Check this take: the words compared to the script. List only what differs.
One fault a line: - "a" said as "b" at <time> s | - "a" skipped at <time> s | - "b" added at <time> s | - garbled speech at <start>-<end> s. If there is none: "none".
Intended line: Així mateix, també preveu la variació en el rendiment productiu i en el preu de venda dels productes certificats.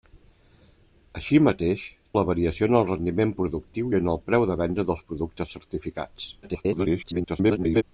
- "també preveu" skipped at 1.8 s
- garbled speech at 6.4-7.8 s